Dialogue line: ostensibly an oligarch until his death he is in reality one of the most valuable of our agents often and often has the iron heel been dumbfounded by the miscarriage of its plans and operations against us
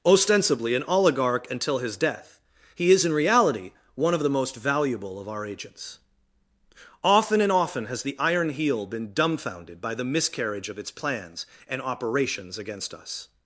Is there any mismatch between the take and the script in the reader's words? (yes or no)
no